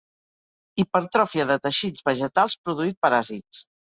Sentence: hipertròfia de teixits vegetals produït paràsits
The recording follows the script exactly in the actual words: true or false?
true